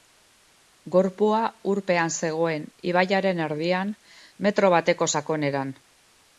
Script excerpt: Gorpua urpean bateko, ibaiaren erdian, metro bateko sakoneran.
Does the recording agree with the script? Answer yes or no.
no